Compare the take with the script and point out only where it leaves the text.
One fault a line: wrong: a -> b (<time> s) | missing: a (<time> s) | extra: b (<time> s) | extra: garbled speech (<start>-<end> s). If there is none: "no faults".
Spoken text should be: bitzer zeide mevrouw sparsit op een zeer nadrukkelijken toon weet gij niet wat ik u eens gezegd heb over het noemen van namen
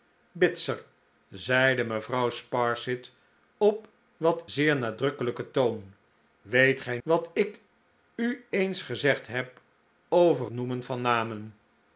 wrong: een -> wat (4.2 s)
missing: niet (7.0 s)
missing: het (10.5 s)